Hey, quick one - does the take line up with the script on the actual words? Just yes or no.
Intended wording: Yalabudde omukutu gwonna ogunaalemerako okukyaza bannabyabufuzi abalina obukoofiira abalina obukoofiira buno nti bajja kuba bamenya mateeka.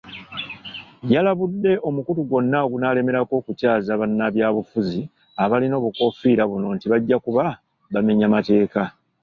no